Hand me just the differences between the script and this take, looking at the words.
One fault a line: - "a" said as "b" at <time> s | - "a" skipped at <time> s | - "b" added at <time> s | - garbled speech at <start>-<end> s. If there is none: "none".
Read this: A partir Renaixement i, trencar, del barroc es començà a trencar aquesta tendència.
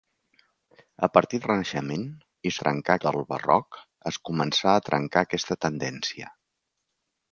none